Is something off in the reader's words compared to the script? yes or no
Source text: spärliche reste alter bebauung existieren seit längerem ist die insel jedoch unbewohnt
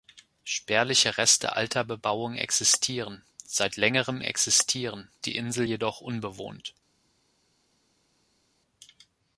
yes